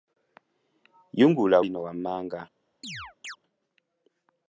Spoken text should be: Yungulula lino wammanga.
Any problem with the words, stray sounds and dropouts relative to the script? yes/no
yes